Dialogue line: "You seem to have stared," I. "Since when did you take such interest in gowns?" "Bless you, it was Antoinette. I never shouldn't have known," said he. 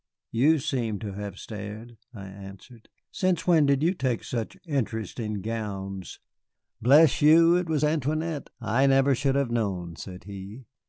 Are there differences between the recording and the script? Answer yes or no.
yes